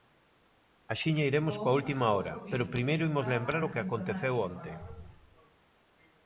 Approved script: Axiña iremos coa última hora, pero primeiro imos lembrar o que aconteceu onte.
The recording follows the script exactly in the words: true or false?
true